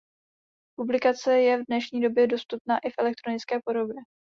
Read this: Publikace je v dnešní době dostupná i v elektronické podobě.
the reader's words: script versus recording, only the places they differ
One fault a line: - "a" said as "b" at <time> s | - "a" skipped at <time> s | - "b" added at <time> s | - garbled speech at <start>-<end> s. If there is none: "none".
none